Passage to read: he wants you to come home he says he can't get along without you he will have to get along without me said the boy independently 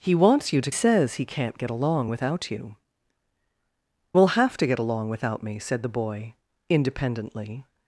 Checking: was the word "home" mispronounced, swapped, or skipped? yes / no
yes